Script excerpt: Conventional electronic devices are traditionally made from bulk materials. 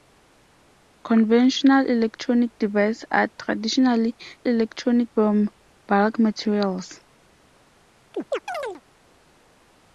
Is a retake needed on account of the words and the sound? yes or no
yes